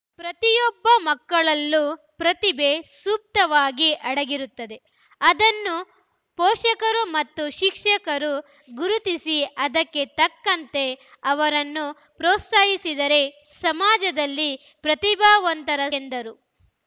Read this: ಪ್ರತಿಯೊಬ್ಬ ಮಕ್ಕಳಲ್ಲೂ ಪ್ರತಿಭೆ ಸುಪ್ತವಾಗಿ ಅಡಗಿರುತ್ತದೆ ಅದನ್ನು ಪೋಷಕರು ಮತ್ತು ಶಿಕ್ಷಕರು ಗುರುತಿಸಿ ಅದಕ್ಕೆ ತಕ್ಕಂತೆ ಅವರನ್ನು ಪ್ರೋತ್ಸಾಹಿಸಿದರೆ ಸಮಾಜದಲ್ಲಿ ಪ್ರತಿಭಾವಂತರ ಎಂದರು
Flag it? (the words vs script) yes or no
no